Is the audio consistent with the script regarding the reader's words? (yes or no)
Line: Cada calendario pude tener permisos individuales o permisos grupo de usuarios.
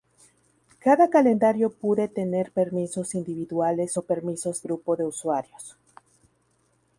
yes